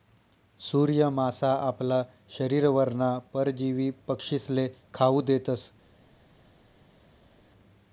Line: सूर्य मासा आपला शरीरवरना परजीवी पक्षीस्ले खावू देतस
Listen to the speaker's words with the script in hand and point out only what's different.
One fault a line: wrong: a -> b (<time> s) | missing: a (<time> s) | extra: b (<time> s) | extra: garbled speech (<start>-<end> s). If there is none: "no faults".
no faults